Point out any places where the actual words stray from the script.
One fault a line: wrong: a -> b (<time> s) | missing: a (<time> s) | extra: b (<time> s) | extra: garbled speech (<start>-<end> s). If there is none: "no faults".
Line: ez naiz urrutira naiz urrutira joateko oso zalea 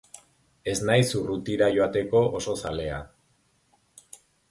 missing: naiz urrutira (1.7 s)